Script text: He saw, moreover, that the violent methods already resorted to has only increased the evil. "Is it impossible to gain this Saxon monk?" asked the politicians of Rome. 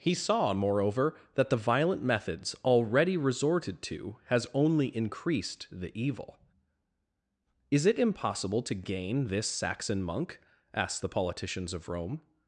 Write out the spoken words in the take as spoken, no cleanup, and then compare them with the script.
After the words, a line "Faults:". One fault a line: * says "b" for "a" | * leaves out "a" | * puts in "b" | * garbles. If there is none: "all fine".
He saw, moreover, that the violent methods already resorted to has only increased the evil. "Is it impossible to gain this Saxon monk?" asked the politicians of Rome.
Faults:
all fine